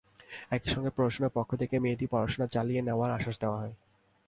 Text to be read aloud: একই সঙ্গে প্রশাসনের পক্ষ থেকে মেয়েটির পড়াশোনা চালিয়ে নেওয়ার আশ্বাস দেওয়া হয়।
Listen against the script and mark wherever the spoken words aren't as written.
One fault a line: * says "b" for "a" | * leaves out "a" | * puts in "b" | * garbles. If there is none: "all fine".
all fine